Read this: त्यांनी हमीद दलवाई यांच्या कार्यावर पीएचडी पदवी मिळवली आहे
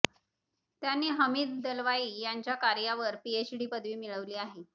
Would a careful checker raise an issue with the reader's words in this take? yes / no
no